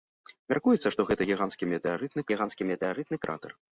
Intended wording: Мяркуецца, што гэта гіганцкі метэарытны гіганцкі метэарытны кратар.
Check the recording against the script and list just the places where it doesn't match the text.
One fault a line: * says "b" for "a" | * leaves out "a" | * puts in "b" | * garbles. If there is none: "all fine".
all fine